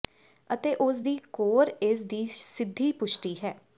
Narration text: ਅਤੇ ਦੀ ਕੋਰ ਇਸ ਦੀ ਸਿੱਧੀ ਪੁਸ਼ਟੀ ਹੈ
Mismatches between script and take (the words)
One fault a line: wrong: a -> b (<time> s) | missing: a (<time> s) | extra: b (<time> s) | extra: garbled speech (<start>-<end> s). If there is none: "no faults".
extra: ਉਸ (0.8 s)